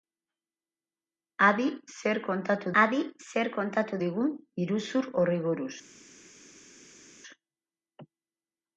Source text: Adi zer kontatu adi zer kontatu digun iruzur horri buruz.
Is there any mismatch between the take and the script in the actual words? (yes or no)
no